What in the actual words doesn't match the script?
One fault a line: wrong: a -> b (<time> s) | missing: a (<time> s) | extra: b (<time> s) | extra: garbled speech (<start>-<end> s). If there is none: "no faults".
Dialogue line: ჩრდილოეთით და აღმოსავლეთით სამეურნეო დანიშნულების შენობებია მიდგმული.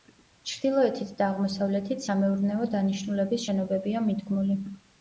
no faults